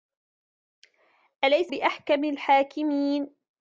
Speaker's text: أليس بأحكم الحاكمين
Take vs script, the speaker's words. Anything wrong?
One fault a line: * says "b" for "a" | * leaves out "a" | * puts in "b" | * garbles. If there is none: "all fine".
all fine